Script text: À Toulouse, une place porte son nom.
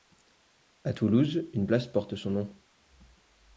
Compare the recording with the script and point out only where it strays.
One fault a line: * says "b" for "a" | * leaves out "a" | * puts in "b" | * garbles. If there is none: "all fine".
all fine